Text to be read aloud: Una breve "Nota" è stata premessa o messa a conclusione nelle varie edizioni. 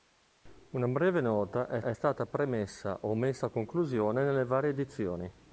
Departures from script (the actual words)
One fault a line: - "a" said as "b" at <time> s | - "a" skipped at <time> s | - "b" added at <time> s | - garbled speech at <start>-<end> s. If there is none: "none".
- "è" added at 1.8 s